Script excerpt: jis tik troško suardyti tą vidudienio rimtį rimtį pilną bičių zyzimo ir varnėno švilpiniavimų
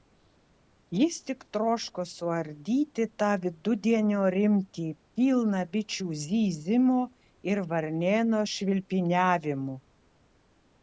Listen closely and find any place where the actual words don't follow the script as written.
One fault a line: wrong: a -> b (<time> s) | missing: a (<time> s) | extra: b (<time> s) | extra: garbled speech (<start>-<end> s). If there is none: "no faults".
missing: rimtį (4.8 s)